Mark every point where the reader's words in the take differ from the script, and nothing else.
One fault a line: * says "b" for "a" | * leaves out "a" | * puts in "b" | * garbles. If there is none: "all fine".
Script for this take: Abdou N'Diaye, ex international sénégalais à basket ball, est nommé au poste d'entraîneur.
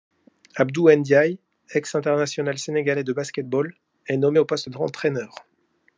* says "de" for "à"